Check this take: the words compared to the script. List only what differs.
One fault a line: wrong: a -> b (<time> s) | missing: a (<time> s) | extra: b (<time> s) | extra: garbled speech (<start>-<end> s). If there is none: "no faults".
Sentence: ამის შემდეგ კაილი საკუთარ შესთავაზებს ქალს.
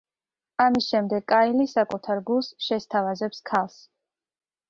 extra: გულს (2.3 s)